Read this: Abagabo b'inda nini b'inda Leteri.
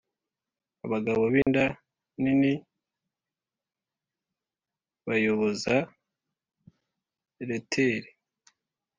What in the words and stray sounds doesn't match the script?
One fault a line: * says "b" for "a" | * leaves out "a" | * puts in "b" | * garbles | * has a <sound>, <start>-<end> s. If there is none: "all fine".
* has a dropout, 1.4-1.5 s
* says "bayoboza" for "b'inda"